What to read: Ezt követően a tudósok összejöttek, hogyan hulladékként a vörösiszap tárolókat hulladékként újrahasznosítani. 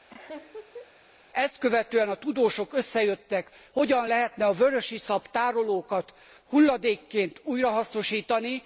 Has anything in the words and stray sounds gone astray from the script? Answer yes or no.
yes